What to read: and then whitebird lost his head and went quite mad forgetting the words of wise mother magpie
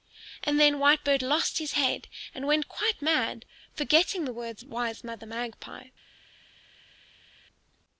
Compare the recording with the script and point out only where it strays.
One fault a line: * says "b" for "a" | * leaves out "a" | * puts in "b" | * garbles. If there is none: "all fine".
* leaves out "of"